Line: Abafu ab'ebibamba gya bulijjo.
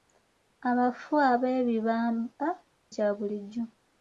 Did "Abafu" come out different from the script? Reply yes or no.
no